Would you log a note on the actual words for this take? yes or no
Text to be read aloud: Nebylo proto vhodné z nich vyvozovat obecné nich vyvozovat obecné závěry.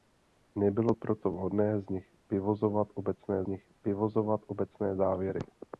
no